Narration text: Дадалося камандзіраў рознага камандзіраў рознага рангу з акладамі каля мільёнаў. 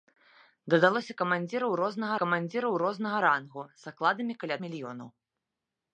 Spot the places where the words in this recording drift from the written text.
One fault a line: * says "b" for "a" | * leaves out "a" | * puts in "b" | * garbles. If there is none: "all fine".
all fine